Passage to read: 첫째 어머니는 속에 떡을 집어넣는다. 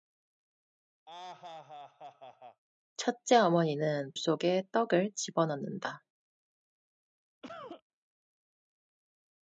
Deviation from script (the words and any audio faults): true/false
true